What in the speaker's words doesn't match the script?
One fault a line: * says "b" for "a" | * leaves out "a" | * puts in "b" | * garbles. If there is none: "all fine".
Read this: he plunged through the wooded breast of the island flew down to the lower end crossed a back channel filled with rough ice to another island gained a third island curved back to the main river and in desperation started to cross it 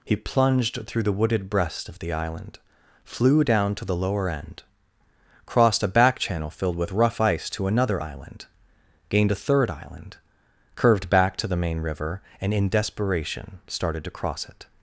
all fine